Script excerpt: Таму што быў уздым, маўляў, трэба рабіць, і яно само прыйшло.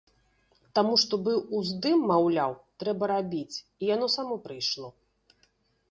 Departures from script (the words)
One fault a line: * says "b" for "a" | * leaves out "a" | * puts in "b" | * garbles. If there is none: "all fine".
all fine